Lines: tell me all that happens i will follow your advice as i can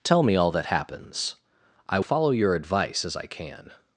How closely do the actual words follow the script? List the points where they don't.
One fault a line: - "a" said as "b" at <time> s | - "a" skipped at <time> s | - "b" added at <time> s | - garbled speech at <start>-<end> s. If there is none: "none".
- "will" skipped at 2.0 s